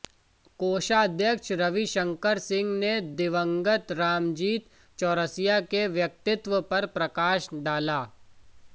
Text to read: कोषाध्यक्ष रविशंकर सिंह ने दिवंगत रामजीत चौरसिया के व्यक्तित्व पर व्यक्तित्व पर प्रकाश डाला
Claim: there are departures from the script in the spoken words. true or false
true